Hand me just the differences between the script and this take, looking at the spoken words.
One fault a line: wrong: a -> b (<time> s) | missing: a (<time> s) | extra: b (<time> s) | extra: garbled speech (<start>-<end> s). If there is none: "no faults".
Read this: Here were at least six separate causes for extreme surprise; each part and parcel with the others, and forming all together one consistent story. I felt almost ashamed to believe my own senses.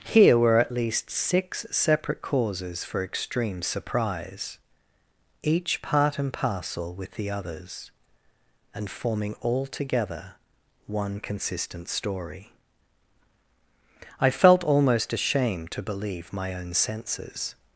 no faults